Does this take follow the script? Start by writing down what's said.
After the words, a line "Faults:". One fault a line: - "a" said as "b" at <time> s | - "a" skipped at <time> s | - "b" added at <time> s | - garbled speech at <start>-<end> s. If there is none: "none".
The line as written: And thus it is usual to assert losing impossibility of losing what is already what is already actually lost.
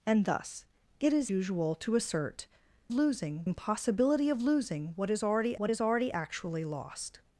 And thus it is usual to assert losing impossibility of losing what is already what is already actually lost.
Faults:
none